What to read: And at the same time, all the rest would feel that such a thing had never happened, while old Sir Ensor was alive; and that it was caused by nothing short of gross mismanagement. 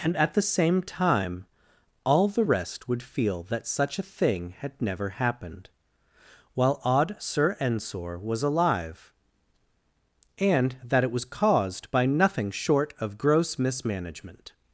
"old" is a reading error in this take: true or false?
true